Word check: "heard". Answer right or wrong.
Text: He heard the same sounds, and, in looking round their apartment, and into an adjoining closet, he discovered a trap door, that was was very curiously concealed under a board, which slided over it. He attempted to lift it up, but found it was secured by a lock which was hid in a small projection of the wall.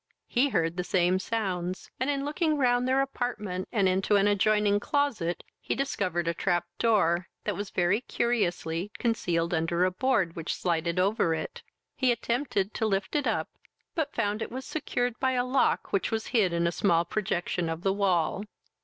right